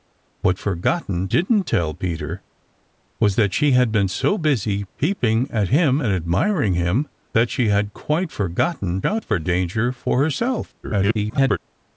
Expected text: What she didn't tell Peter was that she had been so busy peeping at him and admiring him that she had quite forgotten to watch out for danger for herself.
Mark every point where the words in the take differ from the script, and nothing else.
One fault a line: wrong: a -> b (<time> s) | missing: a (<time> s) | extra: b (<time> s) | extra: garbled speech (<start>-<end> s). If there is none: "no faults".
wrong: she -> forgotten (0.6 s)
missing: to watch (9.0 s)
extra: garbled speech (10.8-11.6 s)